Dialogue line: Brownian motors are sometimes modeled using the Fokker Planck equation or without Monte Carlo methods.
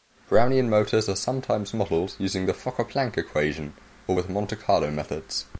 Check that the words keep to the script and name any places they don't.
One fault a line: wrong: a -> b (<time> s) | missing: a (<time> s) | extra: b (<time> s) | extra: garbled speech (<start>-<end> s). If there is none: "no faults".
wrong: without -> with (4.1 s)